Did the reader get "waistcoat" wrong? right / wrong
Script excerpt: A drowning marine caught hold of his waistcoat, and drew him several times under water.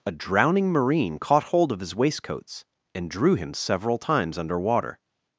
wrong